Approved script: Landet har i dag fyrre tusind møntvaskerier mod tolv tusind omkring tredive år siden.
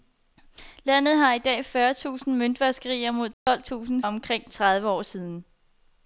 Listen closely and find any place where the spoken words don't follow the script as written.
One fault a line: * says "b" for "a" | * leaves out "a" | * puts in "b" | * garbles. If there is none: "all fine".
all fine